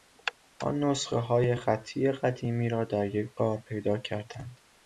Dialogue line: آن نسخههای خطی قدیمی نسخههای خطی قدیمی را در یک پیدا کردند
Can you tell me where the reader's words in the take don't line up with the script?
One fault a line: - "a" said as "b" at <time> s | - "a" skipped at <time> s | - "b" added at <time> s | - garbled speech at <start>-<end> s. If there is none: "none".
- "نسخههای خطی قدیمی" skipped at 2.7 s
- "غار" added at 3.4 s